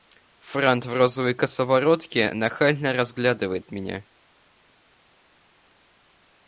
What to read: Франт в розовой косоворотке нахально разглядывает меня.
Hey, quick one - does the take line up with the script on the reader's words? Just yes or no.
yes